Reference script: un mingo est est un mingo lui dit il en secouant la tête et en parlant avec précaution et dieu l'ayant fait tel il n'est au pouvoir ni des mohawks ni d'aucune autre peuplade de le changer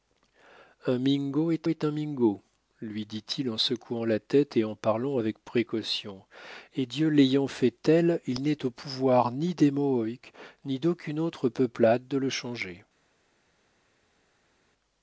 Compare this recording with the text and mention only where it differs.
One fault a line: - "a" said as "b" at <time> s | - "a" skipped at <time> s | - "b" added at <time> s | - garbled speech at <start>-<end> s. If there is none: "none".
none